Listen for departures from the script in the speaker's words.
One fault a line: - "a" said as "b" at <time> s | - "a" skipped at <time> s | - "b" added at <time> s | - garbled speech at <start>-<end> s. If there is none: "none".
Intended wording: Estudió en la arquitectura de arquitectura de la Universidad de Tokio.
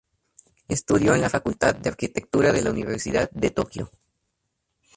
- "arquitectura" said as "facultad" at 1.3 s